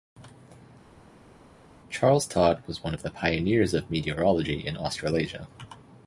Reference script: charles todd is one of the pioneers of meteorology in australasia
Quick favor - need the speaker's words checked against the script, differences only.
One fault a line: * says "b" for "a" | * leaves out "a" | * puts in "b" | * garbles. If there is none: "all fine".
* says "was" for "is"